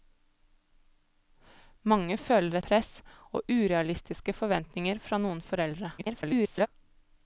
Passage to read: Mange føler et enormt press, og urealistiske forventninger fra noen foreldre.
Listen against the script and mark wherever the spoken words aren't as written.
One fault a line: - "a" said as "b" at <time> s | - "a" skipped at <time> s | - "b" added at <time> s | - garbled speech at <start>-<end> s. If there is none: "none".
- "et enormt" skipped at 2.6 s
- garbled speech at 6.0-6.7 s